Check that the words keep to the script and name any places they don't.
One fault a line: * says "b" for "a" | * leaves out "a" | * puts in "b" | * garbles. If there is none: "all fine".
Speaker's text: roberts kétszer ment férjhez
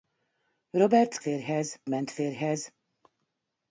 * says "férjhez" for "kétszer"